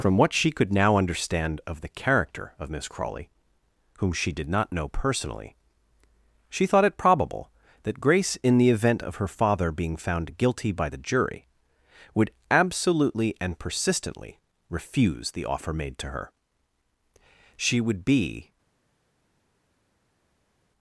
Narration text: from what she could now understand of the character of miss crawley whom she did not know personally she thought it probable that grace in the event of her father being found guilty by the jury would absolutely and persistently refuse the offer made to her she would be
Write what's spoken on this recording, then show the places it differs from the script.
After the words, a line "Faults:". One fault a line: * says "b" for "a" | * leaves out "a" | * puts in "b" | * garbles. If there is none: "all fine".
from what she could now understand of the character of miss crawley whom she did not know personally she thought it probable that grace in the event of her father being found guilty by the jury would absolutely and persistently refuse the offer made to her she would be
Faults:
all fine